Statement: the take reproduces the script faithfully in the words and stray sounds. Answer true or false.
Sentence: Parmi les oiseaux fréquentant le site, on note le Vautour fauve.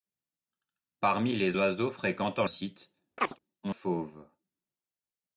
false